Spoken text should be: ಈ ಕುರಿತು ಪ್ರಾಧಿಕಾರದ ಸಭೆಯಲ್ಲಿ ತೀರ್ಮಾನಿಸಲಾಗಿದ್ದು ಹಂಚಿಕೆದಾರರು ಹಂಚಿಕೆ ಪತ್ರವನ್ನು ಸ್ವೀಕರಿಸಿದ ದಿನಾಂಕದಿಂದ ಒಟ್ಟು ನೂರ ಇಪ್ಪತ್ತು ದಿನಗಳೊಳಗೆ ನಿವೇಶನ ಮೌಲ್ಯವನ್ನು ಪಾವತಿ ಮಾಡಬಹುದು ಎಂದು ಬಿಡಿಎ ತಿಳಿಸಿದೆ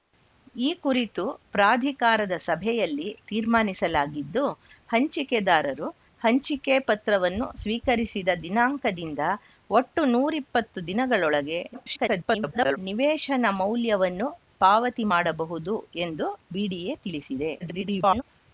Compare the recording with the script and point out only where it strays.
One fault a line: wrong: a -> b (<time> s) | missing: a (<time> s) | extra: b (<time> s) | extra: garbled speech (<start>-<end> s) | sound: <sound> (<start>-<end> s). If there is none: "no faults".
extra: garbled speech (11.7-12.8 s)
extra: garbled speech (17.6-18.2 s)